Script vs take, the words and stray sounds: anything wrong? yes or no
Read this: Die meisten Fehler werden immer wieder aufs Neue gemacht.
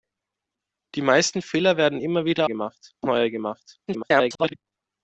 yes